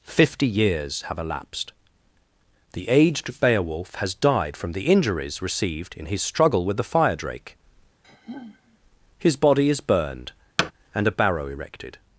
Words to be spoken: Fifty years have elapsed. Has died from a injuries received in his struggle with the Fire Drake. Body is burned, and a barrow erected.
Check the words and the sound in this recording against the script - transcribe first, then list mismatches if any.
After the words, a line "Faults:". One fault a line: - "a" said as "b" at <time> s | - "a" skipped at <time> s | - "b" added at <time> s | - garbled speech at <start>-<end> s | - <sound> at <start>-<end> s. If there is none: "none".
Fifty years have elapsed. The aged Beowulf has died from the injuries received in his struggle with the Fire Drake. His body is burned, and a barrow erected.
Faults:
- "The aged Beowulf" added at 2.7 s
- "a" said as "the" at 4.7 s
- sigh at 8.0-8.8 s
- "His" added at 9.2 s
- thud at 10.6-10.7 s